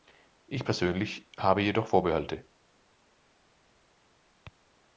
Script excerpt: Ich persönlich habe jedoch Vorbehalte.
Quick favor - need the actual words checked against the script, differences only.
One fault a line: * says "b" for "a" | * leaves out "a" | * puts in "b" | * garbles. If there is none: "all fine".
all fine